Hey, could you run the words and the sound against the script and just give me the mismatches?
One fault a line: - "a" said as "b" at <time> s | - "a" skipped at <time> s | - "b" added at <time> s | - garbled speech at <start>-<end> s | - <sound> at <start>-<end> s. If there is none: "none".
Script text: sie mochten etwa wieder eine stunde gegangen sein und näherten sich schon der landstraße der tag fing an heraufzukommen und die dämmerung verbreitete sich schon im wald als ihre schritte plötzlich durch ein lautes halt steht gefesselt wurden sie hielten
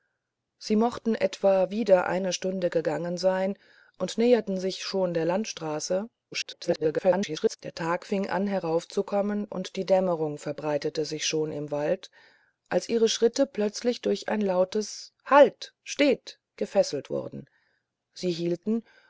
- garbled speech at 6.3-7.6 s